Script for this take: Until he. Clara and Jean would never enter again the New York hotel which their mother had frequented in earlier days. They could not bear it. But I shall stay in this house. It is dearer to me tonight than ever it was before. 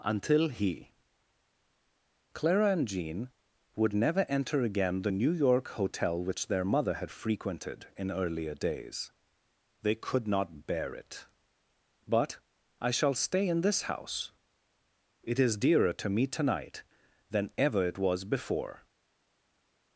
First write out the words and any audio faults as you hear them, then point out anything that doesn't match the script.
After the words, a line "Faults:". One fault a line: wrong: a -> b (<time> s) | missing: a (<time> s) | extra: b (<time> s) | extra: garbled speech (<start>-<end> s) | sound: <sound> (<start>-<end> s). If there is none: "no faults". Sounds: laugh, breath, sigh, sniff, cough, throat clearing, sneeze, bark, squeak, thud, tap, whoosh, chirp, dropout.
Until he. Clara and Jean would never enter again the New York hotel which their mother had frequented in earlier days. They could not bear it. But I shall stay in this house. It is dearer to me tonight than ever it was before.
Faults:
no faults